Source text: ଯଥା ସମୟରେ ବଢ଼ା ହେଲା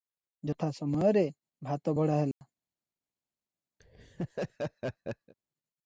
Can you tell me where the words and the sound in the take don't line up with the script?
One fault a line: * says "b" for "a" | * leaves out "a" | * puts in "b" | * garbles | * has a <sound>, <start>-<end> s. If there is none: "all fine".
* puts in "ଭାତ"
* has a dropout, 2.3-2.4 s
* has a laugh, 3.8-5.3 s